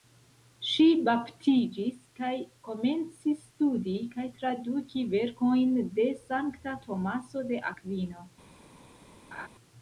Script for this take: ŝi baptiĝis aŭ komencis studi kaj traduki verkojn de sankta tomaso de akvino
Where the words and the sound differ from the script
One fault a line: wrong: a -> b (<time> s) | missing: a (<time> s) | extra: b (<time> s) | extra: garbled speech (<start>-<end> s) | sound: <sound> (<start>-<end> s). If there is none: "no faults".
wrong: aŭ -> kaj (2.2 s)
sound: laugh (9.3-9.5 s)